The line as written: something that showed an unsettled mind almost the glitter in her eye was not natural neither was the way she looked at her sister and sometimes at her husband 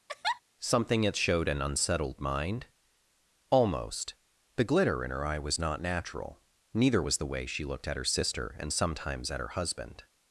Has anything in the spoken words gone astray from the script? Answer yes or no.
no